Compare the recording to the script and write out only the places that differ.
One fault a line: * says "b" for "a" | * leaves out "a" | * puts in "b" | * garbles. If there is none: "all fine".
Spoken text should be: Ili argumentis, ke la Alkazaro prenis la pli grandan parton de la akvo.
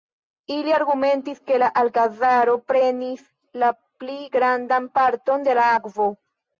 all fine